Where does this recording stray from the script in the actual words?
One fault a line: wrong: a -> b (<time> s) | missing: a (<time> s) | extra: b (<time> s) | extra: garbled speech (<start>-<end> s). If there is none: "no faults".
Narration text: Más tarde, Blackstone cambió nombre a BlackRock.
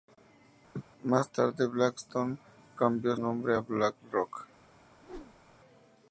no faults